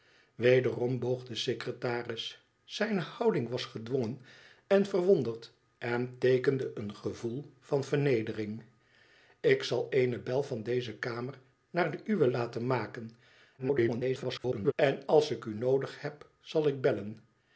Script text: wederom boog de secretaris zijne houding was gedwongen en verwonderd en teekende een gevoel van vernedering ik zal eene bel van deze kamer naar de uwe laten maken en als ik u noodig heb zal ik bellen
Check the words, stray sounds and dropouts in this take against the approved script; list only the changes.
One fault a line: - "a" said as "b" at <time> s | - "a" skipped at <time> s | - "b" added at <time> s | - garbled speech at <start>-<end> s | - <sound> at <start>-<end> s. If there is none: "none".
- garbled speech at 13.6-14.7 s